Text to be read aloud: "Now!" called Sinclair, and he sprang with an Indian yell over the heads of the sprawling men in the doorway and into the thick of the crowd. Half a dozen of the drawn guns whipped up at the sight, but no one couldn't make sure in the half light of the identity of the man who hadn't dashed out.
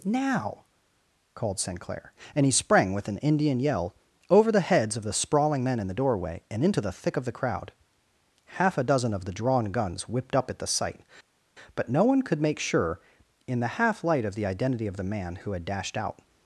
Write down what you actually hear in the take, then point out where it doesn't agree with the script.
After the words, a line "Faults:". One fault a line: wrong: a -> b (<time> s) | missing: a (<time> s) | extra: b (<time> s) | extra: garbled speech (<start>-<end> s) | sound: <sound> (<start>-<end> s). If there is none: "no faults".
"Now!" called Sinclair, and he sprang with an Indian yell over the heads of the sprawling men in the doorway and into the thick of the crowd. Half a dozen of the drawn guns whipped up at the sight, but no one could make sure in the half light of the identity of the man who had dashed out.
Faults:
wrong: couldn't -> could (12.2 s)
wrong: hadn't -> had (15.5 s)